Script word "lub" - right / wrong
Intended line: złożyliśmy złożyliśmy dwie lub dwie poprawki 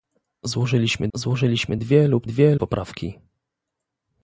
right